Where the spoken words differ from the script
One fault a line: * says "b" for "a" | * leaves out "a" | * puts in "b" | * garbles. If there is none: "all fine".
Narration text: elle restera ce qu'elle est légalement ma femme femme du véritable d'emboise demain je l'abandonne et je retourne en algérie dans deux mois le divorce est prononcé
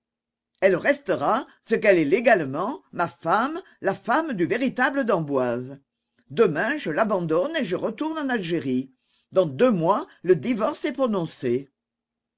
* puts in "la"